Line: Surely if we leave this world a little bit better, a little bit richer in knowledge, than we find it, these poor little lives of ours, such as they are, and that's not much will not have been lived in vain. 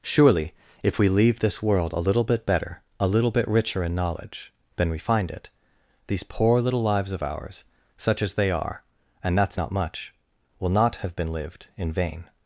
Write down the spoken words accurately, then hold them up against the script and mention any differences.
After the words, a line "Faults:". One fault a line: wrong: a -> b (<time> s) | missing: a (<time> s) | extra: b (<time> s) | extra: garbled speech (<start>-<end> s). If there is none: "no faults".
Surely if we leave this world a little bit better, a little bit richer in knowledge, than we find it, these poor little lives of ours, such as they are, and that's not much will not have been lived in vain.
Faults:
no faults